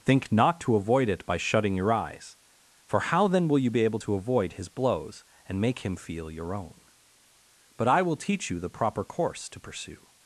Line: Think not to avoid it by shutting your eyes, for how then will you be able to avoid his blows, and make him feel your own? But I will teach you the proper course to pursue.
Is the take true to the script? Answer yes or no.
yes